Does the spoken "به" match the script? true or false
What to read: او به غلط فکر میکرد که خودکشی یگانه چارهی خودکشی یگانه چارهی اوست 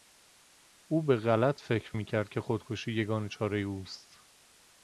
true